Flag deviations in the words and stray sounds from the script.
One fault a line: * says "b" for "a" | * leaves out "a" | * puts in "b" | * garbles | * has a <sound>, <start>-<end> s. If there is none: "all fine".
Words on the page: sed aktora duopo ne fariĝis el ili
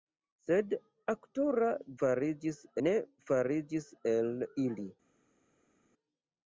* says "fariĝis" for "duopo"